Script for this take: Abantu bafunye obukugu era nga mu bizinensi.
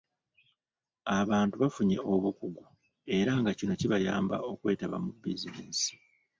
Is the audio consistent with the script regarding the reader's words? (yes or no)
no